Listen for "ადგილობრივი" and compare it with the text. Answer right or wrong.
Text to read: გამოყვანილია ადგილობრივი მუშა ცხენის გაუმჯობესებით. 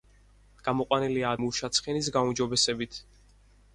wrong